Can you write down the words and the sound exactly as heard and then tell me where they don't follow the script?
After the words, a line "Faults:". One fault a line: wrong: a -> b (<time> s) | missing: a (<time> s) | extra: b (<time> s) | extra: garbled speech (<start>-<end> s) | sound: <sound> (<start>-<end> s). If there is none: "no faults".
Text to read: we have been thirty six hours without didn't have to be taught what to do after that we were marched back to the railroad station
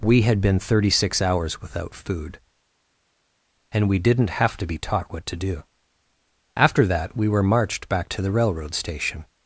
we had been thirty six hours without food and we didn't have to be taught what to do after that we were marched back to the railroad station
Faults:
wrong: have -> had (0.2 s)
extra: food and we (1.9 s)